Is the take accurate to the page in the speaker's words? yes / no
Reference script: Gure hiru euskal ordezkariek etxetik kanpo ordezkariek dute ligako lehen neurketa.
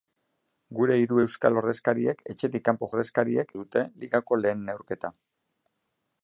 yes